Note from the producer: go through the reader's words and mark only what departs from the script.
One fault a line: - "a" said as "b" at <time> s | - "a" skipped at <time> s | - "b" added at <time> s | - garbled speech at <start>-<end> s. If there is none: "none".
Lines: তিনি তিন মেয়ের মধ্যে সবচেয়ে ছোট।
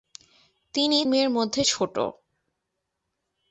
- "তিন" skipped at 1.0 s
- "সবচেয়ে" skipped at 1.6 s